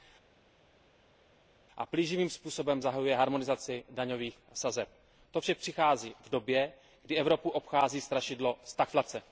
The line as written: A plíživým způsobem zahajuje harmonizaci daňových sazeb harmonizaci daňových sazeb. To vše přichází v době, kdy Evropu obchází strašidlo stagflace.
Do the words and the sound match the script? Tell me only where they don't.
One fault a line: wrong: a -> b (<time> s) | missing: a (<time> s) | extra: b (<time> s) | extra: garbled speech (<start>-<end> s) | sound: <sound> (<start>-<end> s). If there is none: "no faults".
missing: harmonizaci daňových sazeb (4.9 s)